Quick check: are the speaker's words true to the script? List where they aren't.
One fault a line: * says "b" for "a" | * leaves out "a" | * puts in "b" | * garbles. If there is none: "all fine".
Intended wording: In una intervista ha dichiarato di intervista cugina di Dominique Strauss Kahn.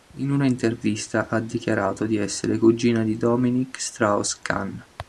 * says "essere" for "intervista"